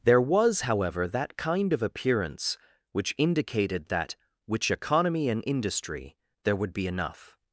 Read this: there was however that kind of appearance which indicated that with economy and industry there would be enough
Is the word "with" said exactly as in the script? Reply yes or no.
no